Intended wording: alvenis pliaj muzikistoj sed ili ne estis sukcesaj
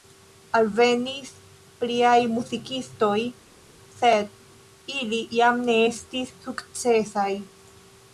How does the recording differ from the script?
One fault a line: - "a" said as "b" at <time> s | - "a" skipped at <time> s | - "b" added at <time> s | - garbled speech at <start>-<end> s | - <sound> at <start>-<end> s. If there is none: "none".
- "jam" added at 5.4 s